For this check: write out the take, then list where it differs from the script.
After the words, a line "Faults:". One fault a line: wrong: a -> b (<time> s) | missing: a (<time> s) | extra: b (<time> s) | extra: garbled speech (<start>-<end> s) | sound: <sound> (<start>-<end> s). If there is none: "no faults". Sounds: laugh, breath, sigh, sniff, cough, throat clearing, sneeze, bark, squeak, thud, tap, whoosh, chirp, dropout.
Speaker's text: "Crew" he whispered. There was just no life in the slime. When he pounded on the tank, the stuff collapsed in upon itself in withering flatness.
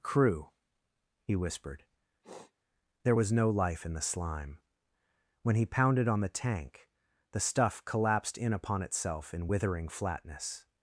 "Crew" he whispered. There was no life in the slime. When he pounded on the tank, the stuff collapsed in upon itself in withering flatness.
Faults:
sound: sniff (2.2-2.5 s)
missing: just (3.3 s)